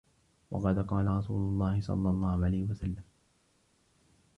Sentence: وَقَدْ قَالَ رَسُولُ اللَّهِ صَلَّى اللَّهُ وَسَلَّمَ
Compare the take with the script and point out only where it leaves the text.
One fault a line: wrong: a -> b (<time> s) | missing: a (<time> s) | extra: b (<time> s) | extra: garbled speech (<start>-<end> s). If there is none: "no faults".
extra: عَلَيْهِ (2.4 s)